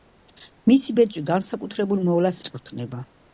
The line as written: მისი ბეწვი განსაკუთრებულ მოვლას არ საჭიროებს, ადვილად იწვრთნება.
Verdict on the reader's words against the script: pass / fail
fail